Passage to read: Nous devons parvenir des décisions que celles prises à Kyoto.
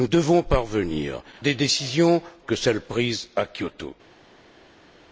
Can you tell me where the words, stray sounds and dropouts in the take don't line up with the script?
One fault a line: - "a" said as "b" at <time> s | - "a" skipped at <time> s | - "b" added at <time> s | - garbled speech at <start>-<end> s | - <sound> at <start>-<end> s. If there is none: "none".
none